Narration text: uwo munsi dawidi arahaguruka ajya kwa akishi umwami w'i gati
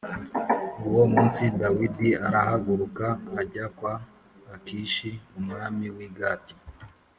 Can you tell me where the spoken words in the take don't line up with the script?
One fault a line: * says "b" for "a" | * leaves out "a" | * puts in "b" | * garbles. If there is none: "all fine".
all fine